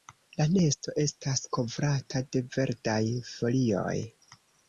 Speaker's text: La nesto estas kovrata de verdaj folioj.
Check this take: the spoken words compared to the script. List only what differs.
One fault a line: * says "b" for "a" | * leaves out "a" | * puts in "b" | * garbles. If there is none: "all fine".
all fine